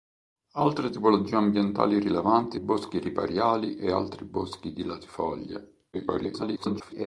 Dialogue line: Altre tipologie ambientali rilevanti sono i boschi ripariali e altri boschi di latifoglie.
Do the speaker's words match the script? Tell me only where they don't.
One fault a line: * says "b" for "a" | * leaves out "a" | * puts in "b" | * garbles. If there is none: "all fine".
* leaves out "sono"
* garbles